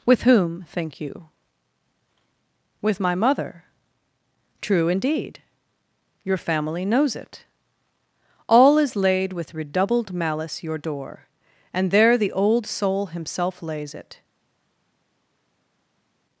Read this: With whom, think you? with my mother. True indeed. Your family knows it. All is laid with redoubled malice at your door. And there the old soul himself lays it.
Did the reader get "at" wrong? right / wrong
wrong